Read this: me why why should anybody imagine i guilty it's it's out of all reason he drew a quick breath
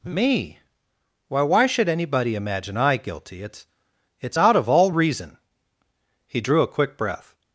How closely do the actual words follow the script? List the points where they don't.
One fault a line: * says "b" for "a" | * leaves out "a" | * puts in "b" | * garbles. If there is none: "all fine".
all fine